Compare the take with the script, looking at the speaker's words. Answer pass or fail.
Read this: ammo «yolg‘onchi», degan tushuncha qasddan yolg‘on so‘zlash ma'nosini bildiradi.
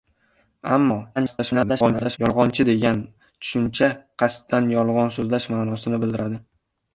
fail